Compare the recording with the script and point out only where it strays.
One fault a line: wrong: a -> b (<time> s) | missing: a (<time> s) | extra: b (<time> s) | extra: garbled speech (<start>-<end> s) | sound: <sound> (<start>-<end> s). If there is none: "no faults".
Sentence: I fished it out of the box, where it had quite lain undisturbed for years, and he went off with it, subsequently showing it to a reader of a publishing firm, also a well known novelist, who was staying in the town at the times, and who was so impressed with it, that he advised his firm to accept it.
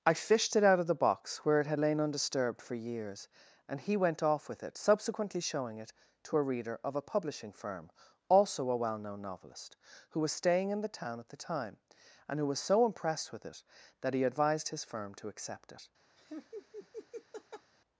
missing: quite (1.8 s)
wrong: times -> time (11.4 s)
sound: laugh (16.2-17.7 s)